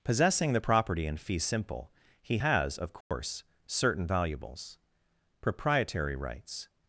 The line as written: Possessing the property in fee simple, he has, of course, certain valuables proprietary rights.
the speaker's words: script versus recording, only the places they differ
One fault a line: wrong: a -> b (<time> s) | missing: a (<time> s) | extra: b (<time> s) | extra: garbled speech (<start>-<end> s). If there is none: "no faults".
no faults